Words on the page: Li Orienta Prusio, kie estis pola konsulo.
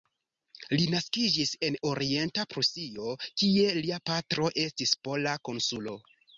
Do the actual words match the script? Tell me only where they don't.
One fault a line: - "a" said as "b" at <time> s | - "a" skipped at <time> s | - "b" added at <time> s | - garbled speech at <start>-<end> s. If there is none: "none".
- "naskiĝis en" added at 0.9 s
- "lia patro" added at 3.8 s